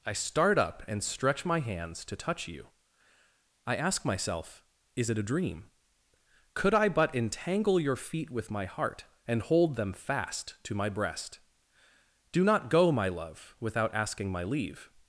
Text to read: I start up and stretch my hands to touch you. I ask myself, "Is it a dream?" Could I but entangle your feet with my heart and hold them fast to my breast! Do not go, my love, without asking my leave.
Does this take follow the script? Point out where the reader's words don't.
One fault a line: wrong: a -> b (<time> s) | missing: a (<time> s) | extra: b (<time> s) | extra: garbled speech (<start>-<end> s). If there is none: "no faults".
no faults